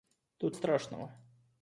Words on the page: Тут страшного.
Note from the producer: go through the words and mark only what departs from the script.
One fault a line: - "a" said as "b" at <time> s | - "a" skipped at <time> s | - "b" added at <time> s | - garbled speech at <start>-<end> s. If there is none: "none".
none